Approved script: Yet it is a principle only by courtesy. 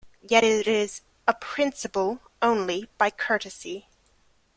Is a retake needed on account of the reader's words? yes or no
no